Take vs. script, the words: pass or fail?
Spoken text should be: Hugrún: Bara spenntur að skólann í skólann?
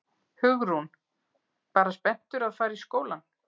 fail